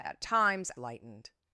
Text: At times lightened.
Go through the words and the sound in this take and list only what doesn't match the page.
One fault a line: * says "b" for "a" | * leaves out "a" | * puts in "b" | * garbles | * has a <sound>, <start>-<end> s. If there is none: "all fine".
all fine